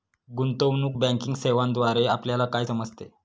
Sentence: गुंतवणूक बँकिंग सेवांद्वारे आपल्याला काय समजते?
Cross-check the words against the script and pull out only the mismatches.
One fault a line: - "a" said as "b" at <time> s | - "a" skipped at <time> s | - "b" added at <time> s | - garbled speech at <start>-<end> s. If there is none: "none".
none